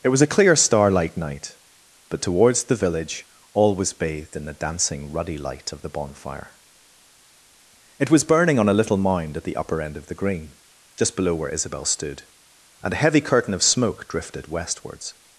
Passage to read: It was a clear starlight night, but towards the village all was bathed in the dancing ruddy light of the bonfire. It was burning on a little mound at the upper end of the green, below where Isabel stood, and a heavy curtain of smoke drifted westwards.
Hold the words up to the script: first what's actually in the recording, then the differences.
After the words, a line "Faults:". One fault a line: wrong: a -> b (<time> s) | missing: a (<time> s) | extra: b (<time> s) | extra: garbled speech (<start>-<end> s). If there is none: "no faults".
It was a clear starlight night, but towards the village all was bathed in the dancing ruddy light of the bonfire. It was burning on a little mound at the upper end of the green, just below where Isabel stood, and a heavy curtain of smoke drifted westwards.
Faults:
extra: just (11.0 s)